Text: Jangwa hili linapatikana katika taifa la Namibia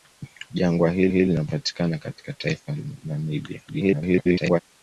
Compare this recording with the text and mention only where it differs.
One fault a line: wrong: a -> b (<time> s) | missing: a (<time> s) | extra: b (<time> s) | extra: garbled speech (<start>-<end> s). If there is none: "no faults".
extra: hili (1.1 s)
extra: garbled speech (3.7-4.6 s)